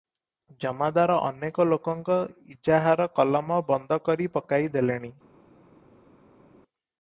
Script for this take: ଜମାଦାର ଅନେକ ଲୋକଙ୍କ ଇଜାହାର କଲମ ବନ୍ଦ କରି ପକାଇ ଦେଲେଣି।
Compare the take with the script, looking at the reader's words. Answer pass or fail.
pass